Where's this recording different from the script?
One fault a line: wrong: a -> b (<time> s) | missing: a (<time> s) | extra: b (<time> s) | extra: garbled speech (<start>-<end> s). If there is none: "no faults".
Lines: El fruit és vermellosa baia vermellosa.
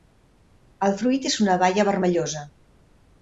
wrong: vermellosa -> una (1.5 s)